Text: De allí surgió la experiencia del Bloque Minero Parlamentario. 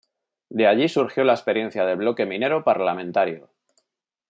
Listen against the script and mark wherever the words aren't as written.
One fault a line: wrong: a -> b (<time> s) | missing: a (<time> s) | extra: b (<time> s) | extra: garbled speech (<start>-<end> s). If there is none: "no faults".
no faults